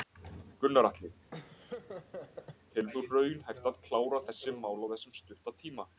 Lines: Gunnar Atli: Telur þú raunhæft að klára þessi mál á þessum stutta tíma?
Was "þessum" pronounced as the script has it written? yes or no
yes